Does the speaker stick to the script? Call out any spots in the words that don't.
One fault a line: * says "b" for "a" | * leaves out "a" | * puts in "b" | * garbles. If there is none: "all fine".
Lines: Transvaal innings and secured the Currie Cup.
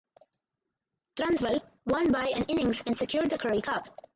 * puts in "won by an"